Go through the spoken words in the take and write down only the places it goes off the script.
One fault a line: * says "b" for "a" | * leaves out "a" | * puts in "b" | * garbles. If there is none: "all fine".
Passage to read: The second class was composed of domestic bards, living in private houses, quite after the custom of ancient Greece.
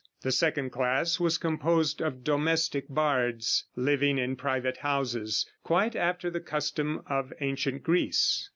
all fine